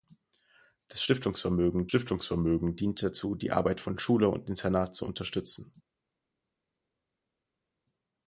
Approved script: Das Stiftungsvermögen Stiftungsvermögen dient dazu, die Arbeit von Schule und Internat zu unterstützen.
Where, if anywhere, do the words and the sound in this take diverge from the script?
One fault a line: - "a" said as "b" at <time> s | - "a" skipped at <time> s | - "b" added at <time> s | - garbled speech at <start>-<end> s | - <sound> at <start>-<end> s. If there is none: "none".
none